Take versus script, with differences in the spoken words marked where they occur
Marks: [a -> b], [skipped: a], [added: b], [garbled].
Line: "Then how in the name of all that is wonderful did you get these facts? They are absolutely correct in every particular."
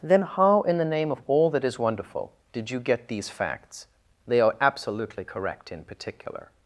"Then how in the name of all that is wonderful did you get these facts? They are absolutely correct in [skipped: every] particular."